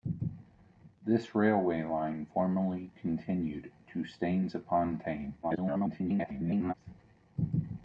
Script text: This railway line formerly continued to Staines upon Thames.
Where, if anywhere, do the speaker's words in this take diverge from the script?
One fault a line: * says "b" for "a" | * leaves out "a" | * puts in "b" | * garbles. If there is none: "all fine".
* garbles